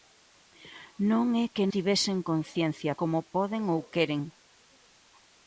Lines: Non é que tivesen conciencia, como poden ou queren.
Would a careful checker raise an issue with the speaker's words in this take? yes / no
no